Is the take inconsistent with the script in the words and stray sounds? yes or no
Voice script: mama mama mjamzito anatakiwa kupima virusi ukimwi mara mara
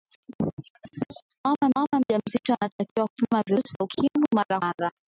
no